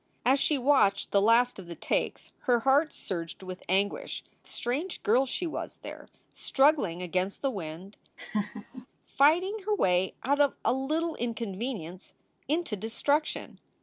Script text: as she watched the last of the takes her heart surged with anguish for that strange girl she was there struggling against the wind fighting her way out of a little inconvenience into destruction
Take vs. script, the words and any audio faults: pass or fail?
fail